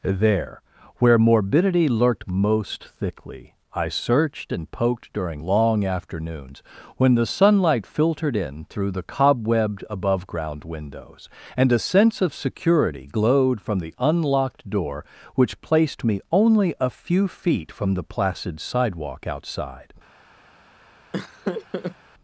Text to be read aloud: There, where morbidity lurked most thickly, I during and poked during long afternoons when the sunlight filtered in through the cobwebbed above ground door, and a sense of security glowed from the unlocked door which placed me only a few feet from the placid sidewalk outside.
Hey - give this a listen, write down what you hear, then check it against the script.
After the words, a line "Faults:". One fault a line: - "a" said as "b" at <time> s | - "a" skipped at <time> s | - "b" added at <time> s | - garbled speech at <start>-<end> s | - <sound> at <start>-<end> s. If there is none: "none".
There, where morbidity lurked most thickly, I searched and poked during long afternoons when the sunlight filtered in through the cobwebbed above ground windows, and a sense of security glowed from the unlocked door which placed me only a few feet from the placid sidewalk outside.
Faults:
- "during" said as "searched" at 3.9 s
- "door" said as "windows" at 10.6 s
- laugh at 21.1-22.0 s